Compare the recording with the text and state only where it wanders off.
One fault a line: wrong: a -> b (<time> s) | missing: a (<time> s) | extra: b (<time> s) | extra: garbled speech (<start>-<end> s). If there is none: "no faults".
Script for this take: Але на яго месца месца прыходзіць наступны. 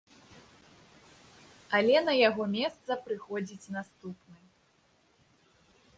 missing: месца (2.9 s)